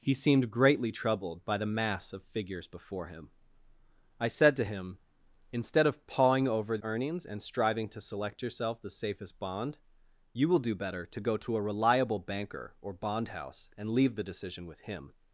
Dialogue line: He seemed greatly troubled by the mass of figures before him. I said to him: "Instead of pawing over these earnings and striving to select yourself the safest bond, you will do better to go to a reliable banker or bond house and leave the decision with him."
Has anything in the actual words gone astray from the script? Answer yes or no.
yes